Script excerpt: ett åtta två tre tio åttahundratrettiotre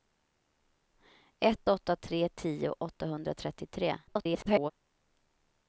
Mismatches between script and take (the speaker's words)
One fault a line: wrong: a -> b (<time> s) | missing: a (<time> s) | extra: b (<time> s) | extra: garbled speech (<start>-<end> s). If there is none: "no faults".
missing: två (1.9 s)
extra: garbled speech (4.1-4.7 s)